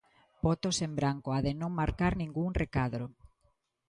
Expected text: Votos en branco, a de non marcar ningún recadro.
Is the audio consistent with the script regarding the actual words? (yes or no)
yes